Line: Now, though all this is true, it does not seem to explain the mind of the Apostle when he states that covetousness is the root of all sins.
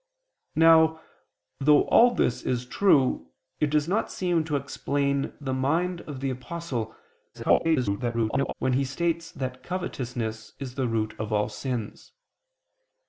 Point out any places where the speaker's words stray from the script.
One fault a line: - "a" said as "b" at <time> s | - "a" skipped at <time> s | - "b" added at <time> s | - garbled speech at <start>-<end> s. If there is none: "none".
- garbled speech at 7.3-8.5 s